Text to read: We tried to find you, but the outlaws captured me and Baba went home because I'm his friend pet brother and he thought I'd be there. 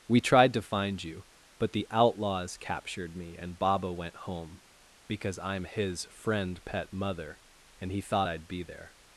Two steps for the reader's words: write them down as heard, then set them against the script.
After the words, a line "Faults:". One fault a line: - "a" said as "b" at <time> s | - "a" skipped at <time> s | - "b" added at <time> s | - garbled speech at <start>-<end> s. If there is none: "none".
We tried to find you, but the outlaws captured me and Baba went home because I'm his friend pet mother and he thought I'd be there.
Faults:
- "brother" said as "mother" at 6.9 s